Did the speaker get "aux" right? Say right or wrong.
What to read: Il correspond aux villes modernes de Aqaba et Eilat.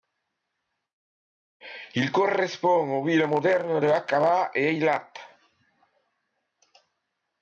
right